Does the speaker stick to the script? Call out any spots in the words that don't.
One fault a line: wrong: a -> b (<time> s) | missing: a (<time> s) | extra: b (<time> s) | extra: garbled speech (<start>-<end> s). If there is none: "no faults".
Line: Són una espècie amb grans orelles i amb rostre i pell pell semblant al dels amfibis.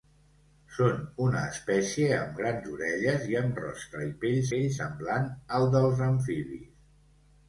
no faults